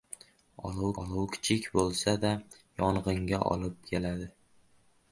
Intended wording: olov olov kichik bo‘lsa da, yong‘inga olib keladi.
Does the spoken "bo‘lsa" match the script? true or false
true